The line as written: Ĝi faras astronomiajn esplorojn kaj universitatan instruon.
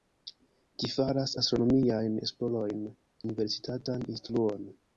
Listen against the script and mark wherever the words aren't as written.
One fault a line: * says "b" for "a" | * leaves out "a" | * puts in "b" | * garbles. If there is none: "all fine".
* leaves out "kaj"